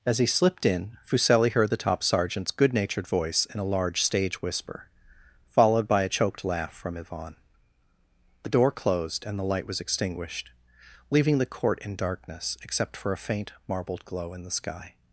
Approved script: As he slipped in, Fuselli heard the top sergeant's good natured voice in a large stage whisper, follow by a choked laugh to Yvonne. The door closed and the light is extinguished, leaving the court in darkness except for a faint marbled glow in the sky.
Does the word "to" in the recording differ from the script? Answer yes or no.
yes